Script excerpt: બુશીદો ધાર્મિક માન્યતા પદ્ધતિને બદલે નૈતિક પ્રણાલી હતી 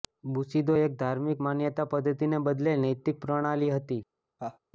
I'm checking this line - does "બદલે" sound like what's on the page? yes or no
yes